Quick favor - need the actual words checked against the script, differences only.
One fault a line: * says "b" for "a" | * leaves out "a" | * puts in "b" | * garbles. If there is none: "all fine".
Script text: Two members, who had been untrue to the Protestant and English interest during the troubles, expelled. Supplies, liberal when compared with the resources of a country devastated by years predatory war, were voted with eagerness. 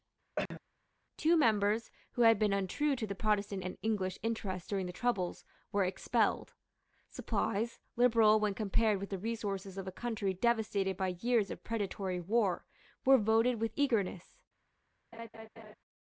* puts in "were"
* puts in "of"